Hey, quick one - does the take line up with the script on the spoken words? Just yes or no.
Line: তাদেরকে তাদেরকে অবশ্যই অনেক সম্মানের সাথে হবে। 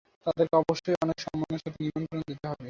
no